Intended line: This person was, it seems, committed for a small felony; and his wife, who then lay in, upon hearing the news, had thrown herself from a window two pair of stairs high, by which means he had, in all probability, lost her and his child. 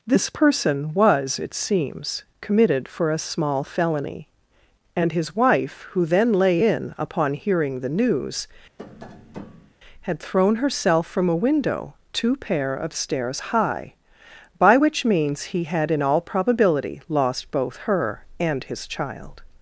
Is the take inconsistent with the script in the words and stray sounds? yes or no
yes